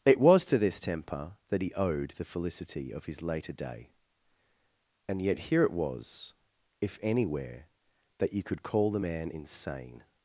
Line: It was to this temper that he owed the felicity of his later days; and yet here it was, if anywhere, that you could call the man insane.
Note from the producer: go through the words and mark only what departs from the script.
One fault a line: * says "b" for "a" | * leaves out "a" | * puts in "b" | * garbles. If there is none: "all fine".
* says "day" for "days"